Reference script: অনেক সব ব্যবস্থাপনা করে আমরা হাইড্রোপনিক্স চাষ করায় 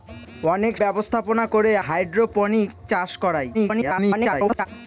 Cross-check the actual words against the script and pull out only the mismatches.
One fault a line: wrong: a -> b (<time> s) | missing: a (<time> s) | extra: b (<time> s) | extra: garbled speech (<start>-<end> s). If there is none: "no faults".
missing: সব (0.7 s)
missing: আমরা (1.7 s)
extra: garbled speech (3.5-4.7 s)